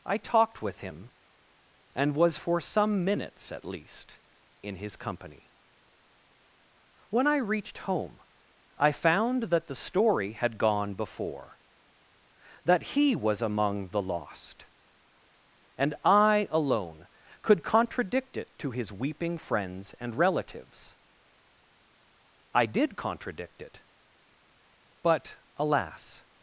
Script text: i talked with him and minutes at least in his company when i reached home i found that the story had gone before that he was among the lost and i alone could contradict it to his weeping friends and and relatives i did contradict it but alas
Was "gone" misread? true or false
false